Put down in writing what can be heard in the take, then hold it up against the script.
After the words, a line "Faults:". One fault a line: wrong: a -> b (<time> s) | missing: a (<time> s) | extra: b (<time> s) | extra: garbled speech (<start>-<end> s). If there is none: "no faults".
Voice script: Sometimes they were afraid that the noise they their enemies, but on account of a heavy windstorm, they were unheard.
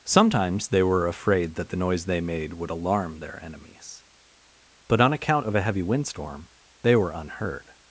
Sometimes they were afraid that the noise they made would alarm their enemies, but on account of a heavy windstorm, they were unheard.
Faults:
extra: made would alarm (2.2 s)